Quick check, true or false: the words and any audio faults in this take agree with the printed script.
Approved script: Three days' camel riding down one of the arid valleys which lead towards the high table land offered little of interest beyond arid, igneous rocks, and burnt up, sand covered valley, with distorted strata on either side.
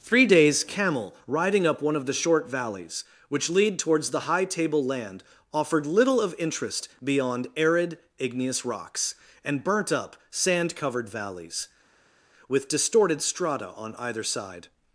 false